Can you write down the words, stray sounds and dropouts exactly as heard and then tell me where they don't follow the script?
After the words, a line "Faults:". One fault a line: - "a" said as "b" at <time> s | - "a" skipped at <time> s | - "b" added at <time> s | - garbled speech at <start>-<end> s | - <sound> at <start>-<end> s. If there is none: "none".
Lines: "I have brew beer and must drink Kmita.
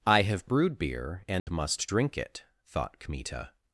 "I have brewed beer and must drink it," thought Kmita.
Faults:
- "brew" said as "brewed" at 0.5 s
- dropout at 1.4-1.5 s
- "it thought" added at 2.2 s